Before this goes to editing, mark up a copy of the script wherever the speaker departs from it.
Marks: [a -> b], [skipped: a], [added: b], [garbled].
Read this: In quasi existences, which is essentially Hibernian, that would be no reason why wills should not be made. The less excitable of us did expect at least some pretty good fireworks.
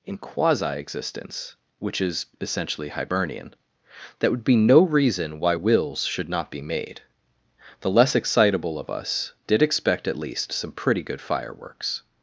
In quasi [existences, -> existence] which is essentially Hibernian, that would be no reason why wills should not be made. The less excitable of us did expect at least some pretty good fireworks.